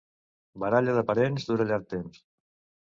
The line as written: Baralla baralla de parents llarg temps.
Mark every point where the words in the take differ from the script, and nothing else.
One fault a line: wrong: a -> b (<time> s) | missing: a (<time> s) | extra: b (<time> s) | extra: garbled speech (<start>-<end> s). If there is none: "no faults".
missing: baralla (1.0 s)
extra: dura (1.5 s)